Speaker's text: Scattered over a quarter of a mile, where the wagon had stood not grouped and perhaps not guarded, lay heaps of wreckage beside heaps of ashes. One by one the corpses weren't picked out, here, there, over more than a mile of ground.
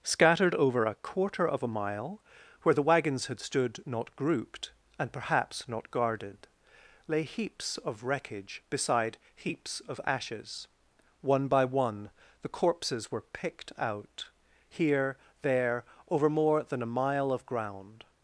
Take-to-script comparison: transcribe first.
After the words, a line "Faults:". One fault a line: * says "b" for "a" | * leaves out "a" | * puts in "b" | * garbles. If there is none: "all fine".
Scattered over a quarter of a mile, where the wagons had stood not grouped and perhaps not guarded, lay heaps of wreckage beside heaps of ashes. One by one the corpses were picked out, here, there, over more than a mile of ground.
Faults:
* says "wagons" for "wagon"
* says "were" for "weren't"